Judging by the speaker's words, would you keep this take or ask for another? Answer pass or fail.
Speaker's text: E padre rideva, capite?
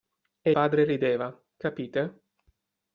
pass